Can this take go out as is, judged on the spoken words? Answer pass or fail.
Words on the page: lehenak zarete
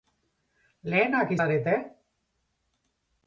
pass